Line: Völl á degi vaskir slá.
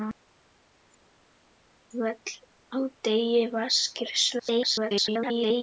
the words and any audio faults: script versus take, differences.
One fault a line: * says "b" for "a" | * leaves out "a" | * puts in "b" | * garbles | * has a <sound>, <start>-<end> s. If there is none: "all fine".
* garbles